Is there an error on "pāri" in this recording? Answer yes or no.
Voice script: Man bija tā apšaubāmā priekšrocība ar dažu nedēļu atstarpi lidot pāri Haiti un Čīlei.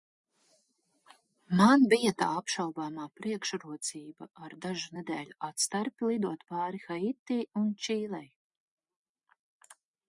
no